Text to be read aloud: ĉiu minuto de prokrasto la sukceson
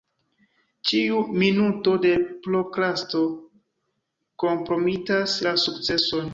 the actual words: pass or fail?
fail